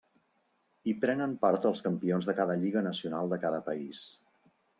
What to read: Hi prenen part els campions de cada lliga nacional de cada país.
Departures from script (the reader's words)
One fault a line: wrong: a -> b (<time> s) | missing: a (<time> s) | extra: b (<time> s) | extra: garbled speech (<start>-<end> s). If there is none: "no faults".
no faults